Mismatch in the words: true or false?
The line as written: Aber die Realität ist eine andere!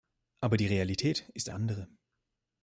true